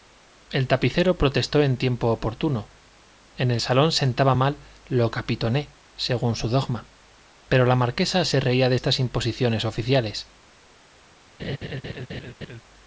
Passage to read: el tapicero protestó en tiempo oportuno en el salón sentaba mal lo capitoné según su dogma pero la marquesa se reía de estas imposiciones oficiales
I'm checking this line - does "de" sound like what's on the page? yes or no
yes